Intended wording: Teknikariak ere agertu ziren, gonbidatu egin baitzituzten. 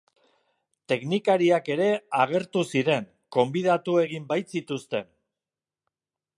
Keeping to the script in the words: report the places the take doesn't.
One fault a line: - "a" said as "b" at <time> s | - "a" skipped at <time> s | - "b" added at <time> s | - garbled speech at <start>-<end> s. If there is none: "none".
none